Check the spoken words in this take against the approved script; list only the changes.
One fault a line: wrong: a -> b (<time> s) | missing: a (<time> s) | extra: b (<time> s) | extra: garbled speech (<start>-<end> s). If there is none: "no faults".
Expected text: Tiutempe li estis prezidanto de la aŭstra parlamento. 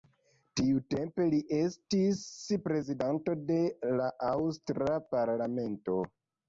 no faults